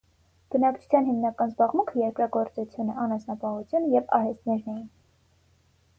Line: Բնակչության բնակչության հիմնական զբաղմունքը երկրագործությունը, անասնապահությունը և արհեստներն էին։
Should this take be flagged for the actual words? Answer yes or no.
yes